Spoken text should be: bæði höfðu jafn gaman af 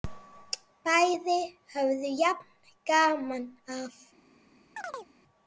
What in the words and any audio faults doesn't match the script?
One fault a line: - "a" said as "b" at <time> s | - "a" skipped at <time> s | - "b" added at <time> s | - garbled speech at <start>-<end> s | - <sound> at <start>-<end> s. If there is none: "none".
- chirp at 4.8-5.1 s